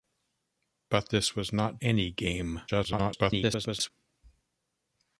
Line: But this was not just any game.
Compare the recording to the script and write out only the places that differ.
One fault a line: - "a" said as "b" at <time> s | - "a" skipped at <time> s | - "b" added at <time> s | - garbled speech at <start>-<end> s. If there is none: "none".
- "just" skipped at 1.8 s
- garbled speech at 2.7-3.9 s